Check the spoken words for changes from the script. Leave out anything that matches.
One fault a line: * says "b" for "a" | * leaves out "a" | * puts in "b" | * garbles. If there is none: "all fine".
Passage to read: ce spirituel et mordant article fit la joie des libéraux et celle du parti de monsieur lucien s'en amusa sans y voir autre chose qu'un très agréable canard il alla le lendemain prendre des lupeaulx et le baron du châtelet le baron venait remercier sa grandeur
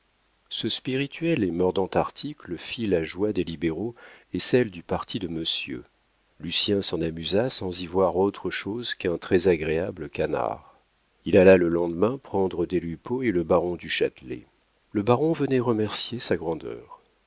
all fine